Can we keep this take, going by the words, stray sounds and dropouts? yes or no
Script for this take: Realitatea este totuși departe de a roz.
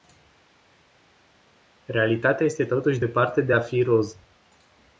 no